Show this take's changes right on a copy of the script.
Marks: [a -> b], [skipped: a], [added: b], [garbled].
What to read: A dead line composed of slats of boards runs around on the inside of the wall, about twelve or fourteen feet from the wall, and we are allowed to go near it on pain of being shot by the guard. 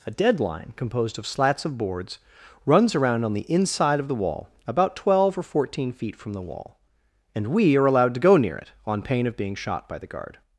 A dead line composed of slats of boards runs around on the inside of the wall, about twelve or fourteen feet from the wall, and we are allowed to go near it on pain of being shot by the guard.